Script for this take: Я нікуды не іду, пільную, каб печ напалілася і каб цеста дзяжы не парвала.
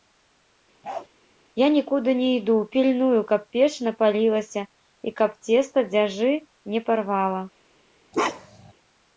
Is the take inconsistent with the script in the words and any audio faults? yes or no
yes